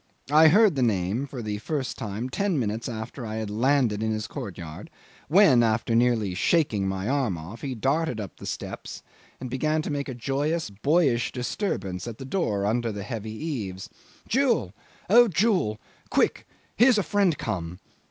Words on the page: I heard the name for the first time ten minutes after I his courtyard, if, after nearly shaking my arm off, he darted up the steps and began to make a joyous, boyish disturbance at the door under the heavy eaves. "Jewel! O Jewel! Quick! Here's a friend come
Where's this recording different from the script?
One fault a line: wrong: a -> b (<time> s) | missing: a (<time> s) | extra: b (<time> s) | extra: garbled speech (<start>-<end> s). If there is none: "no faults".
extra: had landed in (3.3 s)
wrong: if -> when (5.3 s)